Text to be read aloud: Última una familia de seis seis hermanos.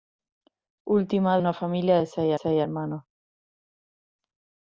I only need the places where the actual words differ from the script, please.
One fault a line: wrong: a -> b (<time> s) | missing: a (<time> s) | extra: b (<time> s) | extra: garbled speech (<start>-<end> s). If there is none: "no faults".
no faults